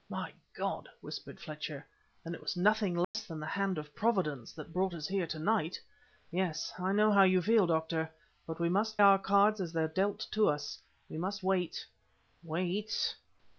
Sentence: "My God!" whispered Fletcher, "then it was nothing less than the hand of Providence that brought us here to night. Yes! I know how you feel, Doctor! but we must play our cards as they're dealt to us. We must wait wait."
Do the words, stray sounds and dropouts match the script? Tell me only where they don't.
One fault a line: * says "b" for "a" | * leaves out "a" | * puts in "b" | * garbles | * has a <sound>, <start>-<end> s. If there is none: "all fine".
* has a dropout, 3.0-3.1 s
* leaves out "play"